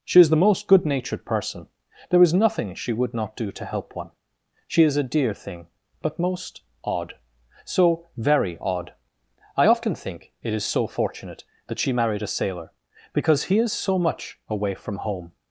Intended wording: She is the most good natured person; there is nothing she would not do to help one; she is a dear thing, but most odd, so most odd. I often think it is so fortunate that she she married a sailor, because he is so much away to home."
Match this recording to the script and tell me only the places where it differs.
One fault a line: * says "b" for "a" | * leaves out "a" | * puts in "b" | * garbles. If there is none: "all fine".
* says "very" for "most"
* leaves out "she"
* says "from" for "to"